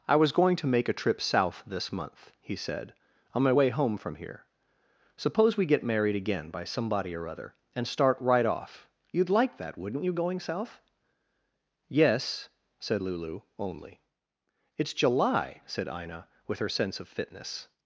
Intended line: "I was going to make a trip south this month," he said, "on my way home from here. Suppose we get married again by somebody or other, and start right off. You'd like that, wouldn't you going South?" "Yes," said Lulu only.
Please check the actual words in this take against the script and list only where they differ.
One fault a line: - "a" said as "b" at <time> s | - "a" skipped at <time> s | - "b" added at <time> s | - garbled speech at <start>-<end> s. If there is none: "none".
- "It's July said Ina with her sense of fitness" added at 14.8 s